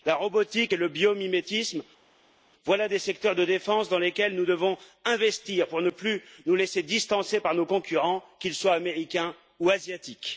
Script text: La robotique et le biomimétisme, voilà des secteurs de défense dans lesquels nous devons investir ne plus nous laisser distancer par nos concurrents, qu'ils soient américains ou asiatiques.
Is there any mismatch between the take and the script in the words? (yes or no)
yes